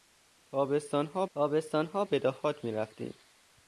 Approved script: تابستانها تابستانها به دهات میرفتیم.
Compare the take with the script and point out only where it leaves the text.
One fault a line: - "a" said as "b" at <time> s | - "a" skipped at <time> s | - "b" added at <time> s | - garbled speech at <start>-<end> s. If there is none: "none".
none